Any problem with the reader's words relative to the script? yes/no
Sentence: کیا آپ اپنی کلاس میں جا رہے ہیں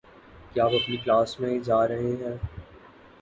no